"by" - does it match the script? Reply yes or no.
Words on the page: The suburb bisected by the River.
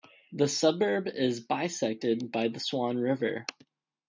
yes